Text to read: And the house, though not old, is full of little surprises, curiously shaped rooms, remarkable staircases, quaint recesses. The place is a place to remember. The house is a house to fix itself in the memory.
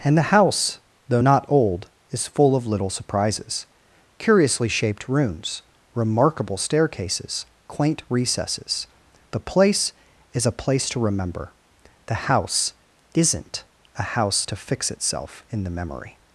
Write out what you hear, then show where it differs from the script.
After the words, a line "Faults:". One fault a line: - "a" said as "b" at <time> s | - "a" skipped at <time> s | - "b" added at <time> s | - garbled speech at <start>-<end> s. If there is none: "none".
And the house, though not old, is full of little surprises, curiously shaped rooms, remarkable staircases, quaint recesses. The place is a place to remember. The house isn't a house to fix itself in the memory.
Faults:
- "is" said as "isn't" at 13.1 s